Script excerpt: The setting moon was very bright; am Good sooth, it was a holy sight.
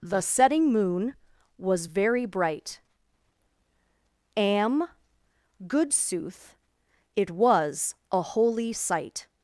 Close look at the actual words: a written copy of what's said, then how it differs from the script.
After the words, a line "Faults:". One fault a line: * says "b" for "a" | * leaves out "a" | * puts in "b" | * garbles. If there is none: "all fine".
The setting moon was very bright; am Good sooth, it was a holy sight.
Faults:
all fine